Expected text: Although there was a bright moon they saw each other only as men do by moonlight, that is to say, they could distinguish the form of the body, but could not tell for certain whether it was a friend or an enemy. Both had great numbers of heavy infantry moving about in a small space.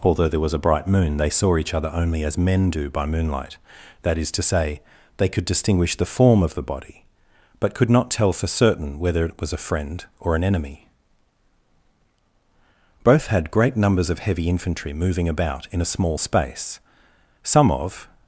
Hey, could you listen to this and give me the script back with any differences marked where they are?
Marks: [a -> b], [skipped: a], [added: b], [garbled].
Although there was a bright moon they saw each other only as men do by moonlight, that is to say, they could distinguish the form of the body, but could not tell for certain whether it was a friend or an enemy. Both had great numbers of heavy infantry moving about in a small space. [added: Some of]